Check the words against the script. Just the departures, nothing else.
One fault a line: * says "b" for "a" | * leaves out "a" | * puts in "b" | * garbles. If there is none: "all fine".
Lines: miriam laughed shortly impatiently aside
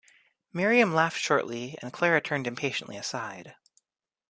* puts in "and clara turned"